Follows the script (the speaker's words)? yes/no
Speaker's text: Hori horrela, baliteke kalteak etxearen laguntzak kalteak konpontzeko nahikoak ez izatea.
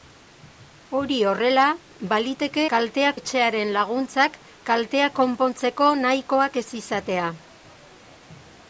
yes